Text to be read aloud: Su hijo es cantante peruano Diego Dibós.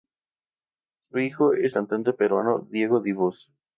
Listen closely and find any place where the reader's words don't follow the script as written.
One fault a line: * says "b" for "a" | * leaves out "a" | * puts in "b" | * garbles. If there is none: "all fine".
all fine